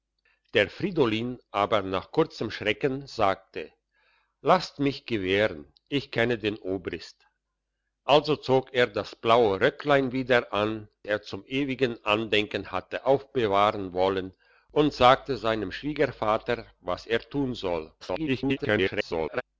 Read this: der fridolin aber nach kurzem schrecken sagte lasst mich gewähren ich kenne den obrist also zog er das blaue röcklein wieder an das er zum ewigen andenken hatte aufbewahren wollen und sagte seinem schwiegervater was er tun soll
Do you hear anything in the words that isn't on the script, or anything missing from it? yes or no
yes